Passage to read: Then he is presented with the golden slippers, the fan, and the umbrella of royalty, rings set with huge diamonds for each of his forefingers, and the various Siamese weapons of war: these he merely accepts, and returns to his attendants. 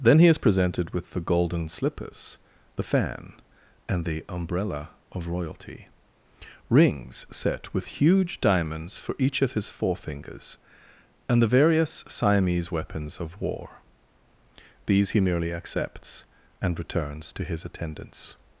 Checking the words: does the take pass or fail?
pass